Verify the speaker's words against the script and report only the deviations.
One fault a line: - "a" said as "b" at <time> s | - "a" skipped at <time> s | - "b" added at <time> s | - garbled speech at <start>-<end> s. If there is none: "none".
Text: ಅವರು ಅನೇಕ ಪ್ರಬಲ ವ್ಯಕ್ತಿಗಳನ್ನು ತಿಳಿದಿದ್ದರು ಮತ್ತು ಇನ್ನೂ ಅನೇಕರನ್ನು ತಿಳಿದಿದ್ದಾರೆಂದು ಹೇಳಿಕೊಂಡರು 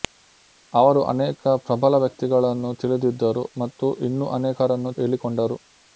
- "ತಿಳಿದಿದ್ದಾರೆಂದು" skipped at 4.9 s